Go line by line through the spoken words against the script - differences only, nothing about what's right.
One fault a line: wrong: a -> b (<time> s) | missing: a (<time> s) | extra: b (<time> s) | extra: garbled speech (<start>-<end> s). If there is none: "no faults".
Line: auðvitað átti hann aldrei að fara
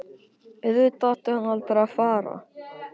no faults